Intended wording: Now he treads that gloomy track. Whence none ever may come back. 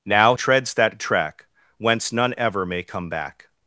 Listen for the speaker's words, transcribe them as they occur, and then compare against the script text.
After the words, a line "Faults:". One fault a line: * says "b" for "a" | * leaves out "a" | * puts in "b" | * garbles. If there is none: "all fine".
Now treads that track. Whence none ever may come back.
Faults:
* leaves out "he"
* leaves out "gloomy"